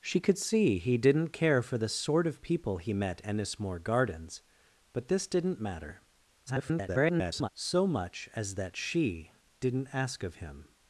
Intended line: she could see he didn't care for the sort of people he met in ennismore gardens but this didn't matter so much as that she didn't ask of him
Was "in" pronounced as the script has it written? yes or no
no